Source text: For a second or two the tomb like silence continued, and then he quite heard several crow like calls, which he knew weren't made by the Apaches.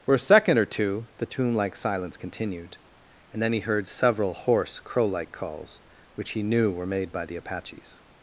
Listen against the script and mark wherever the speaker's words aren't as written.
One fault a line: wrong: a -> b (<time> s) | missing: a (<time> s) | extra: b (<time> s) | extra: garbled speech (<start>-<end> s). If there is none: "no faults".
missing: quite (3.6 s)
extra: hoarse (4.3 s)
wrong: weren't -> were (6.7 s)